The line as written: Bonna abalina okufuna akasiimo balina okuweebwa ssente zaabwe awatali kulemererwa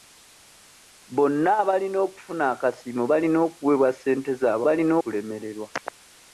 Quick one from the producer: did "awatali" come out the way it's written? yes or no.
no